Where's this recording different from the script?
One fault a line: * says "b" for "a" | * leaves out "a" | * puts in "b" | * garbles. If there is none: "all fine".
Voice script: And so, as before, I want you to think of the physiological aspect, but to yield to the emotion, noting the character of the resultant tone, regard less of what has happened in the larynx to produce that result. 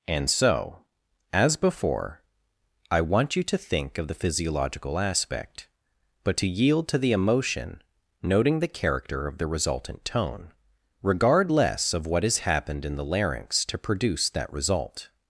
all fine